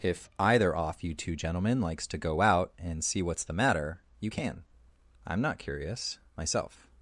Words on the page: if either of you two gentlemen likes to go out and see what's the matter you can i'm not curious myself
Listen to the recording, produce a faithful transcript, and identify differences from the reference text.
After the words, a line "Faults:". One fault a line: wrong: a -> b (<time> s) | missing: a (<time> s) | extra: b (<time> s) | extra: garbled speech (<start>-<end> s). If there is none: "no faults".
if either off you two gentlemen likes to go out and see what's the matter you can i'm not curious myself
Faults:
wrong: of -> off (0.8 s)